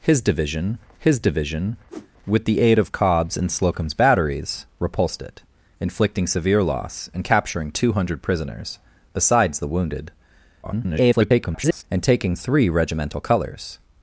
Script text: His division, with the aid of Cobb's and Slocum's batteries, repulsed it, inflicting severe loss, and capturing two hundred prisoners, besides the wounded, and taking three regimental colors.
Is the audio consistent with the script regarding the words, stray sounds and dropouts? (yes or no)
no